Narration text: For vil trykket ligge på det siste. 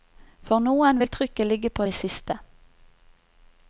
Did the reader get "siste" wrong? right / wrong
right